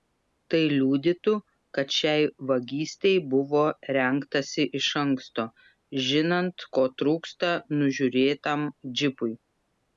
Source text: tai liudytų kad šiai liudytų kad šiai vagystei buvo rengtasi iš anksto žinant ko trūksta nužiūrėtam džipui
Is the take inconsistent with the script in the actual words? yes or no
yes